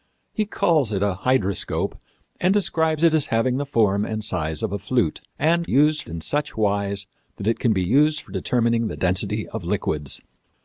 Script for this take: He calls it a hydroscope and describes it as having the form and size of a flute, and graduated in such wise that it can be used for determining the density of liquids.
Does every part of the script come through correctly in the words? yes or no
no